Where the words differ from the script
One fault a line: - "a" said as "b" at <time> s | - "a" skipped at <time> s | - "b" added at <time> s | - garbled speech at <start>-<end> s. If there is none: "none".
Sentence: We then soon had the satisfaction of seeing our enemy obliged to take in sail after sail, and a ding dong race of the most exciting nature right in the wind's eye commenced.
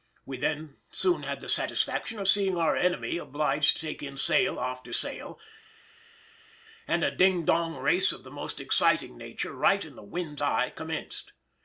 none